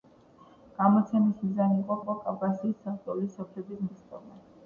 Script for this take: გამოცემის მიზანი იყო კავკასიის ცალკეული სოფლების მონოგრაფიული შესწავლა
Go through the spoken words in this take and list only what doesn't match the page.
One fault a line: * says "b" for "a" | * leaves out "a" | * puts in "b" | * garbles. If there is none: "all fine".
* puts in "იყო"
* leaves out "მონოგრაფიული"